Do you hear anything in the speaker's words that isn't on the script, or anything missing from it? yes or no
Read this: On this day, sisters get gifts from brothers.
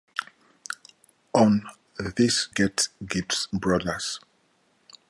yes